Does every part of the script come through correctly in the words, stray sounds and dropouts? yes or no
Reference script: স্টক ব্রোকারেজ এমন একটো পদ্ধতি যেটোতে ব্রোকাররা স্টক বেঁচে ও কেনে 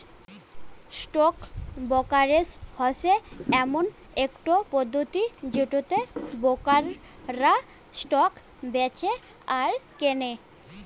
no